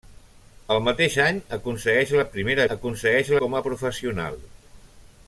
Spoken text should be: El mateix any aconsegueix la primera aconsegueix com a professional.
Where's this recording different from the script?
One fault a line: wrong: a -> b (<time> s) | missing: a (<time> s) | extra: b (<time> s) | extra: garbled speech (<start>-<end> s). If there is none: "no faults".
no faults